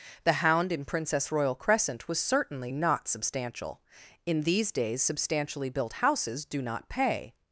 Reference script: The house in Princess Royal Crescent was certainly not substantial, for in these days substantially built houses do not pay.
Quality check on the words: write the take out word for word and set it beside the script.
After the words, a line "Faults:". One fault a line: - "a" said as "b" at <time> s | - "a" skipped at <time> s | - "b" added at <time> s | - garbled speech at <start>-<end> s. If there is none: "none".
The hound in Princess Royal Crescent was certainly not substantial, in these days substantially built houses do not pay.
Faults:
- "house" said as "hound" at 0.3 s
- "for" skipped at 3.8 s